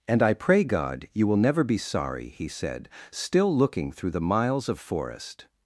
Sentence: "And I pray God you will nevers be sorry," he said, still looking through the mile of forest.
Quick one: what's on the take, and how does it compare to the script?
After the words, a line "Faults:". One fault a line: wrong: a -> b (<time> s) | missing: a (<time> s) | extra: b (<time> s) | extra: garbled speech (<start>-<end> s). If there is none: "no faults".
"And I pray God you will never be sorry," he said, still looking through the miles of forest.
Faults:
wrong: nevers -> never (1.4 s)
wrong: mile -> miles (4.2 s)